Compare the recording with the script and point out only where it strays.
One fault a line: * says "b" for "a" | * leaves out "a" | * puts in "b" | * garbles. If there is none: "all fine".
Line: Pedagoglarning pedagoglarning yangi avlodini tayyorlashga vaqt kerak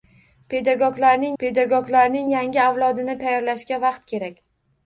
all fine